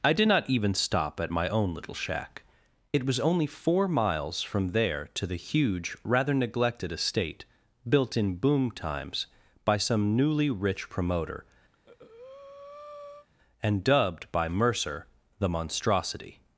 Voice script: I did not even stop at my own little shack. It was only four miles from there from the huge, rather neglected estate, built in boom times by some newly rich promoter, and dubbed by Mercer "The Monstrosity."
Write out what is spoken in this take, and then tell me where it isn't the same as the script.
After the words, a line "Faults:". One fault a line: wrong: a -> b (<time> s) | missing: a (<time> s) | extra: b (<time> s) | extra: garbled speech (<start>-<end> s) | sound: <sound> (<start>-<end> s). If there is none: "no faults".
I did not even stop at my own little shack. It was only four miles from there to the huge, rather neglected estate, built in boom times by some newly rich promoter, and dubbed by Mercer "The Monstrosity."
Faults:
wrong: from -> to (5.1 s)
sound: breath (11.7-13.3 s)